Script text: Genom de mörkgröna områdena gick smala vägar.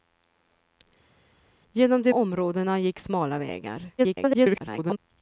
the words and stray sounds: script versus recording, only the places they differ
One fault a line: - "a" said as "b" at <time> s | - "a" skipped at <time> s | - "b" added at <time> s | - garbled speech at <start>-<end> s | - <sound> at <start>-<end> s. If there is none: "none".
- "mörkgröna" skipped at 2.1 s
- garbled speech at 4.0-5.0 s